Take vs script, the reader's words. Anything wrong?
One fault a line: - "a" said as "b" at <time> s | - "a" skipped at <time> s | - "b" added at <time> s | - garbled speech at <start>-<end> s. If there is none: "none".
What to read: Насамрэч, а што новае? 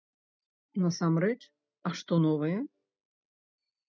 none